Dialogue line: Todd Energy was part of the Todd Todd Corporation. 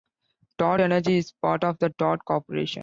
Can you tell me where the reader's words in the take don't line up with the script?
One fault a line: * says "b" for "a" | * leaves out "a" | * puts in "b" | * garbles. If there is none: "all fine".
* says "is" for "was"
* leaves out "Todd"